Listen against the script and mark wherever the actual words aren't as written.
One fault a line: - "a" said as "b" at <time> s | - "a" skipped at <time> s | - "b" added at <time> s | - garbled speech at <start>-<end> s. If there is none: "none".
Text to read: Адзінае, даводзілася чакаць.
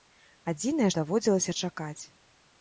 none